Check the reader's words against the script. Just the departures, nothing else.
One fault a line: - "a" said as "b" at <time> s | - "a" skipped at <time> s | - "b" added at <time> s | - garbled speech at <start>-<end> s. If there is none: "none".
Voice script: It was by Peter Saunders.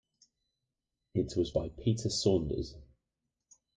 none